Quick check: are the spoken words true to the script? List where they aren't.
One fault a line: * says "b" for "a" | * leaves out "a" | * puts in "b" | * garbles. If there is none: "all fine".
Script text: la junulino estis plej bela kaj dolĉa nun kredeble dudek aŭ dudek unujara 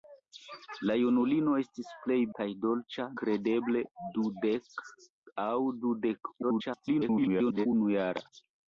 * leaves out "bela"
* leaves out "nun"
* garbles